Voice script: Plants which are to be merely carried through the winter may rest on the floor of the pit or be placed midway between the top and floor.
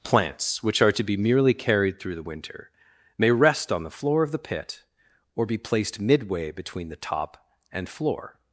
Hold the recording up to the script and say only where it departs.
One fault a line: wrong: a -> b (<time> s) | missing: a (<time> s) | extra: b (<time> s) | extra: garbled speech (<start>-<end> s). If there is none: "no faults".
no faults